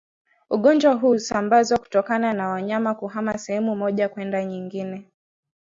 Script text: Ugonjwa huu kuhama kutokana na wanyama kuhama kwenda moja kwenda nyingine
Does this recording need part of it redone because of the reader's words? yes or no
yes